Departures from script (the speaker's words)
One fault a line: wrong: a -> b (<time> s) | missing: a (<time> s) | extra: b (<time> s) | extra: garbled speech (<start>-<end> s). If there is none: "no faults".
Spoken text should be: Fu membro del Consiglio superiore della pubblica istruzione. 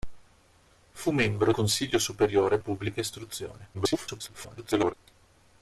missing: del (1.5 s)
missing: della (2.6 s)
extra: garbled speech (3.7-4.9 s)